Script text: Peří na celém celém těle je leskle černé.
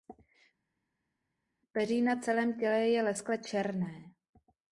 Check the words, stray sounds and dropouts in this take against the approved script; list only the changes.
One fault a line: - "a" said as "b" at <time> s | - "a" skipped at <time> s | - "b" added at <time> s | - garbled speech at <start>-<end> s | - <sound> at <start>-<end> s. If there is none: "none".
- "celém" skipped at 2.6 s